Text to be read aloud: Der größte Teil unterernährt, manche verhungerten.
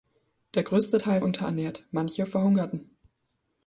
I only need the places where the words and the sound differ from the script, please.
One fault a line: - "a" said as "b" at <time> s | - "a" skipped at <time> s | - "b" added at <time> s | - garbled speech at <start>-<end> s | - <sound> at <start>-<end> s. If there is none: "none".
none